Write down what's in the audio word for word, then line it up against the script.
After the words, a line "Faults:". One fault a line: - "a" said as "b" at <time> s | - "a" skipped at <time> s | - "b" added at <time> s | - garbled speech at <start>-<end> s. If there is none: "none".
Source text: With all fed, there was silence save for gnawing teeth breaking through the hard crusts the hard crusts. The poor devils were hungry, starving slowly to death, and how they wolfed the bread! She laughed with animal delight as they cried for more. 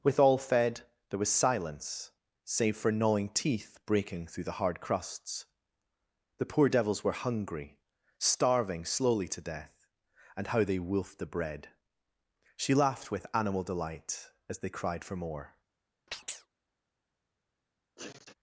With all fed, there was silence save for gnawing teeth breaking through the hard crusts. The poor devils were hungry, starving slowly to death, and how they wolfed the bread! She laughed with animal delight as they cried for more.
Faults:
- "hard crusts The" skipped at 6.5 s